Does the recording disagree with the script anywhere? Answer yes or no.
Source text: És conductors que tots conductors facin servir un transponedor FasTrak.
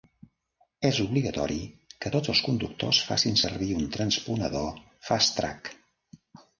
yes